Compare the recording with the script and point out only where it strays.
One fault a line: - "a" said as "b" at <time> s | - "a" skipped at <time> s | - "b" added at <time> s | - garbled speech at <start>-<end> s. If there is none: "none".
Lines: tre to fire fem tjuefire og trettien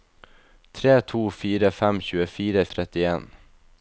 none